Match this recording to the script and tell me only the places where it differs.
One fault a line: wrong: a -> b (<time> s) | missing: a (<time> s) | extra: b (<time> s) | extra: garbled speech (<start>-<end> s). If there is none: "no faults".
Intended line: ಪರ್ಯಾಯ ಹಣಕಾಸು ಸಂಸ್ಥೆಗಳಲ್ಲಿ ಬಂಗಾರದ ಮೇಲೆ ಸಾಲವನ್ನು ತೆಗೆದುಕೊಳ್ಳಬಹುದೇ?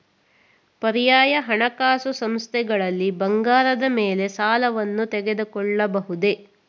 no faults